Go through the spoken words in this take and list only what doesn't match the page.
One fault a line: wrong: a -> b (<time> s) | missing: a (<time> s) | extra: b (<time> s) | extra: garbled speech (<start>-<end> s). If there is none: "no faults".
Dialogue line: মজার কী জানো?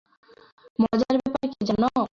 extra: ব্যাপার (1.2 s)